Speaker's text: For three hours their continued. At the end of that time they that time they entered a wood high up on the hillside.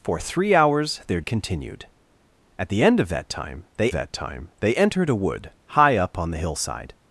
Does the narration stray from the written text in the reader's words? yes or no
no